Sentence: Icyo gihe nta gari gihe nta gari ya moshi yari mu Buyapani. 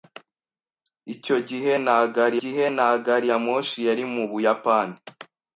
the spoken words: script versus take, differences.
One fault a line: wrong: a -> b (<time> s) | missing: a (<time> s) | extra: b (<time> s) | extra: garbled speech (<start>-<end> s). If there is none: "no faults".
no faults